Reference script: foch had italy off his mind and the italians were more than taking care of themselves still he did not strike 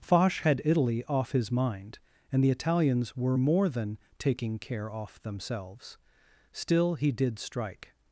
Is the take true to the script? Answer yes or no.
no